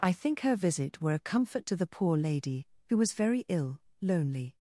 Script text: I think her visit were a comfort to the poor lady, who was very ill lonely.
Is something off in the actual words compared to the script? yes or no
no